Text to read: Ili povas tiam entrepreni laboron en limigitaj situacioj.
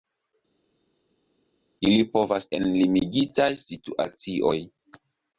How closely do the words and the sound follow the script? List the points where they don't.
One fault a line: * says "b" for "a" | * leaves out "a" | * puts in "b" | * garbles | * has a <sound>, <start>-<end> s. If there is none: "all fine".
* leaves out "tiam entrepreni laboron"